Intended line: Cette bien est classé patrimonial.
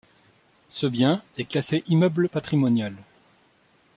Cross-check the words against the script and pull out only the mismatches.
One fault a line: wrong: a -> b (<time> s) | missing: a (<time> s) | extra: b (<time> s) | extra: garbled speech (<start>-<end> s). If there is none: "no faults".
wrong: Cette -> Ce (0.7 s)
extra: immeuble (1.9 s)